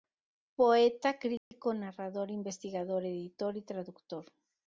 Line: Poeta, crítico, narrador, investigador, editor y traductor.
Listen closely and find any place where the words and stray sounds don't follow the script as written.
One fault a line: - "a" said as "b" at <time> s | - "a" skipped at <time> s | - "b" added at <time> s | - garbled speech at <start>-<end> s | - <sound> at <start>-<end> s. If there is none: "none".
- dropout at 1.4-1.5 s